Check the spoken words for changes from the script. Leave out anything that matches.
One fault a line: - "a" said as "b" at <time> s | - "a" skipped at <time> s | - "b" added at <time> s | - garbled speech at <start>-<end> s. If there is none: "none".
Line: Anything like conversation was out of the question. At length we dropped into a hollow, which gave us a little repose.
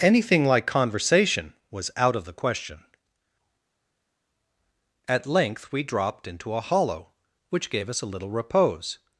none